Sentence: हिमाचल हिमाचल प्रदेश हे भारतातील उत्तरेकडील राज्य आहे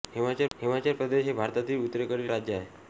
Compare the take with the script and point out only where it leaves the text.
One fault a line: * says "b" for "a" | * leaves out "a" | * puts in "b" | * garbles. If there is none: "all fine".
all fine